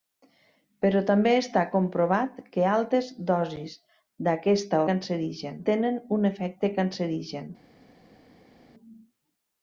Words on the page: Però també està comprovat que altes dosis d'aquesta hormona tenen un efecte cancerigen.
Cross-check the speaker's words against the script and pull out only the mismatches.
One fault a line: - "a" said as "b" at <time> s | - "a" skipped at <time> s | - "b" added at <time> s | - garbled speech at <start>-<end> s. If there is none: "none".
- "hormona" said as "cancerigen" at 4.9 s